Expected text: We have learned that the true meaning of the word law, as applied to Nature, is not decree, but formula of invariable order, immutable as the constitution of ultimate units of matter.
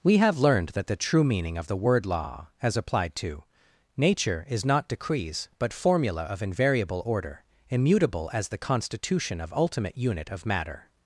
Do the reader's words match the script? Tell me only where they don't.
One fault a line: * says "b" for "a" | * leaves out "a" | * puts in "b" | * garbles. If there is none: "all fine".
* says "decrees" for "decree"
* says "unit" for "units"